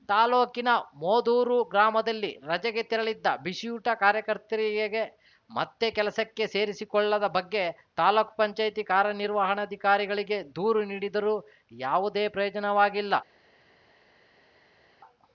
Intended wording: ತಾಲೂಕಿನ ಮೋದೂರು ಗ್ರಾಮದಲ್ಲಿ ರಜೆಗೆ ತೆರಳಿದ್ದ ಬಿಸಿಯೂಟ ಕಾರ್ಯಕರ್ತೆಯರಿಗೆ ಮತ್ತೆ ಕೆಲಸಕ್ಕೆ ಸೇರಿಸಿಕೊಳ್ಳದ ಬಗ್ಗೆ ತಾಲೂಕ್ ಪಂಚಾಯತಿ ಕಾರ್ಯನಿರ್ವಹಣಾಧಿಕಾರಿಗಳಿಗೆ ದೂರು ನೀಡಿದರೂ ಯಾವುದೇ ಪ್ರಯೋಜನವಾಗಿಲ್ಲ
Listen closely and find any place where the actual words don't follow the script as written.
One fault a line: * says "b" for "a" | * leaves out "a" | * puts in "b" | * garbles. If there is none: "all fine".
all fine